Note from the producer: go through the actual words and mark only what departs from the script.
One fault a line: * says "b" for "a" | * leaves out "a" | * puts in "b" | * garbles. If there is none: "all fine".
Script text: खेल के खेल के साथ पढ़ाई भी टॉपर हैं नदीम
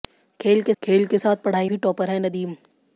all fine